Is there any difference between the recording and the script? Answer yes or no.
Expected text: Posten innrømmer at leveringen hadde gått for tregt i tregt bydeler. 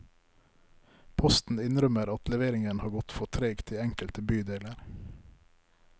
yes